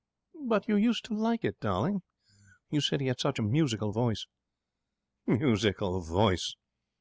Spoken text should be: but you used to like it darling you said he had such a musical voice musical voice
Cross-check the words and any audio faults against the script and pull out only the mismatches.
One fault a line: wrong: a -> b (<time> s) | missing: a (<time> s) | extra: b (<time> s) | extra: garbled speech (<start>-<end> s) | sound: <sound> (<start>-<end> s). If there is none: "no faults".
no faults